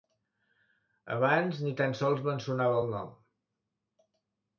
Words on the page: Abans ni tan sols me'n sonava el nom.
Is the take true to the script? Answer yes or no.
yes